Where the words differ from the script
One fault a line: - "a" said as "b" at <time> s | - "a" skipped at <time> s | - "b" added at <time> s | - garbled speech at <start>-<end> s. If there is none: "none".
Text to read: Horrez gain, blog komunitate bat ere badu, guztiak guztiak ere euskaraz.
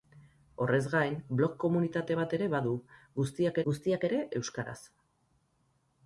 none